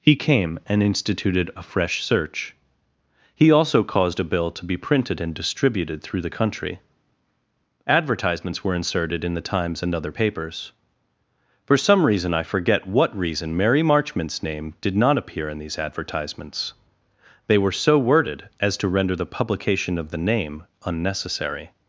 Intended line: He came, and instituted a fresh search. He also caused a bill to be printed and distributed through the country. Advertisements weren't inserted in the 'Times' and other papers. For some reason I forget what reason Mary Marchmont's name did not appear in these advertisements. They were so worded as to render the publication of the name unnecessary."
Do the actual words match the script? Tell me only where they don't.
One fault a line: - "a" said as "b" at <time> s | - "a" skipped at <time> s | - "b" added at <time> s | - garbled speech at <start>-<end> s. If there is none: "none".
- "weren't" said as "were" at 8.6 s